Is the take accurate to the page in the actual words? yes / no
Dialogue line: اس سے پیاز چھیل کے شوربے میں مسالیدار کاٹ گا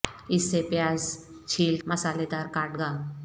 no